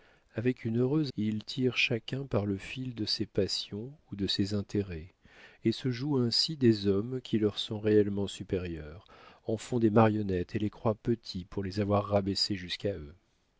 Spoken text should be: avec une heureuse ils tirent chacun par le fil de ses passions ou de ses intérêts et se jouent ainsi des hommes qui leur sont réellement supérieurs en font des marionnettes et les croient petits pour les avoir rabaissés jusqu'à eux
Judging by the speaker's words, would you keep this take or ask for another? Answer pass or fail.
pass